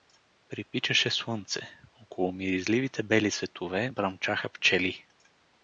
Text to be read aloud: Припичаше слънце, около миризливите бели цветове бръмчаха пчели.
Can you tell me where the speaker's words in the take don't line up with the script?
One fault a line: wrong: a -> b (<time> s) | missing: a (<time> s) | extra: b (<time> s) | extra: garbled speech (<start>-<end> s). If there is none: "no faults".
no faults